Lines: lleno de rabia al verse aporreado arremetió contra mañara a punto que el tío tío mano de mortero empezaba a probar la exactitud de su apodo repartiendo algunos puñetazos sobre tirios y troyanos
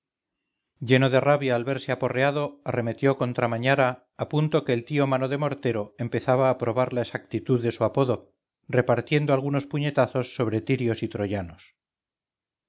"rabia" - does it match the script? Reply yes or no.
yes